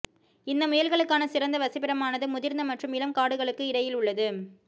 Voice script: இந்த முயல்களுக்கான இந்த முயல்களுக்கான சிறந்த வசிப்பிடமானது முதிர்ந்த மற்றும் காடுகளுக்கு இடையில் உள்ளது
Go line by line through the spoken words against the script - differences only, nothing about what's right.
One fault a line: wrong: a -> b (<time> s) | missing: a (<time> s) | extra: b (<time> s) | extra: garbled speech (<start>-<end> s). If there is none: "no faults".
missing: இந்த முயல்களுக்கான (1.3 s)
extra: இளம் (3.0 s)